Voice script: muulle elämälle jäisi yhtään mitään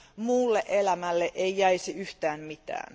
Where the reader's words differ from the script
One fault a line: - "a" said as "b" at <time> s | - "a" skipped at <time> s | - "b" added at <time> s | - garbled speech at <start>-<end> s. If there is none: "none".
- "ei" added at 1.4 s